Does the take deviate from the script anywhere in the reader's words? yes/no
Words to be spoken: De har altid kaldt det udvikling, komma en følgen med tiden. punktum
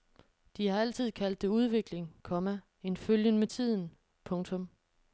no